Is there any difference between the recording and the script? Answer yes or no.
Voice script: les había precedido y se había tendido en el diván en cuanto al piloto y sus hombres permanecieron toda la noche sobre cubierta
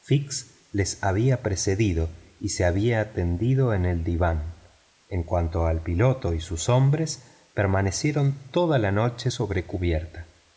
no